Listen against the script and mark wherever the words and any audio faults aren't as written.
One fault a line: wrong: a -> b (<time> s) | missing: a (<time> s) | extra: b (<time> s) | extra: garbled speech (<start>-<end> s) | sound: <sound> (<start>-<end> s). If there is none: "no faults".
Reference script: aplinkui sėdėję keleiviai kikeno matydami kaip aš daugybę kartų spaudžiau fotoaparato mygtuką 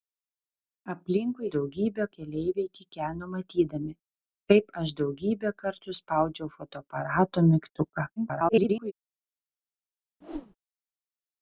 wrong: sėdėję -> daugybę (1.6 s)
extra: garbled speech (8.2-8.9 s)
sound: whoosh (10.2-10.6 s)